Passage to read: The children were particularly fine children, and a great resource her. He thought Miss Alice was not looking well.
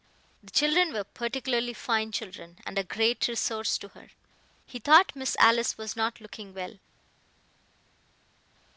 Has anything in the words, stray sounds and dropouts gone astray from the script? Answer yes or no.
yes